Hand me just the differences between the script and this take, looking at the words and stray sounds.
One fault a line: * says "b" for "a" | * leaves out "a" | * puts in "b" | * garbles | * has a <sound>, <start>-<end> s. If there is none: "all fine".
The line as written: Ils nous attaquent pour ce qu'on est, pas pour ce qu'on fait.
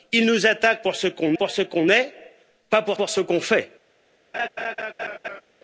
* puts in "pour ce qu'on"
* puts in "pour"
* has a laugh, 4.3-5.4 s